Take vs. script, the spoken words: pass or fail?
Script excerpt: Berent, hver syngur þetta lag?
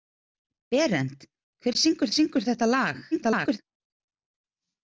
fail